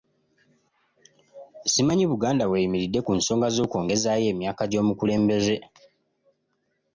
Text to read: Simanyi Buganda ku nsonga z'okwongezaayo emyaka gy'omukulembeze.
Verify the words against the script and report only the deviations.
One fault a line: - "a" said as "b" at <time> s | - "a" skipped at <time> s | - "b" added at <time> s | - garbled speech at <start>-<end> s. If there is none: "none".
- "w'eyimiridde" added at 2.5 s